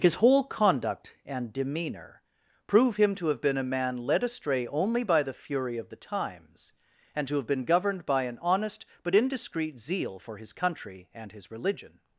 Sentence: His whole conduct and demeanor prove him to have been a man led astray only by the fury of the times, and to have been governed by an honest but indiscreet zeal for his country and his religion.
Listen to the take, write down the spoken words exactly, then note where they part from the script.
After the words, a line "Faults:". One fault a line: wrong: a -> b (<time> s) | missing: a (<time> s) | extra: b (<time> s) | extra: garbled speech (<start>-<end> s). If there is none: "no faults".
His whole conduct and demeanor prove him to have been a man led astray only by the fury of the times, and to have been governed by an honest but indiscreet zeal for his country and his religion.
Faults:
no faults